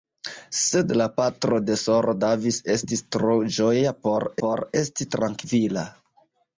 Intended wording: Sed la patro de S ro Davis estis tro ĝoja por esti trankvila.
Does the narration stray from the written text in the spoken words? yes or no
yes